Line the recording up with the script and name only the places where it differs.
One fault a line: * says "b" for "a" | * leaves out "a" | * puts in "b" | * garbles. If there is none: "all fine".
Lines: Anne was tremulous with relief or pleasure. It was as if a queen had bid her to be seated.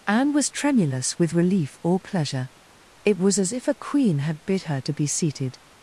all fine